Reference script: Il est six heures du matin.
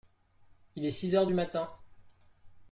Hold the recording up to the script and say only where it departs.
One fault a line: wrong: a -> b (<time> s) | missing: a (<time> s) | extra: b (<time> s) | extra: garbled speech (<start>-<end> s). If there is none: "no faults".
no faults